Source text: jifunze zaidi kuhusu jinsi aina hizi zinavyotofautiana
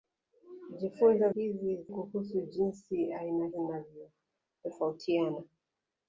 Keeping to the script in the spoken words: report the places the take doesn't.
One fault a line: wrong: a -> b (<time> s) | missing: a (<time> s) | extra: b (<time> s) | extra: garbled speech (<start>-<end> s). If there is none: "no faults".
wrong: zaidi -> hizi (1.3 s)
missing: hizi (3.5 s)